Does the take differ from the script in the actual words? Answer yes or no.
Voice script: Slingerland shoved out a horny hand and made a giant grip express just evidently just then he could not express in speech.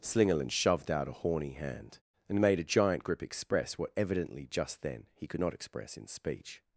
yes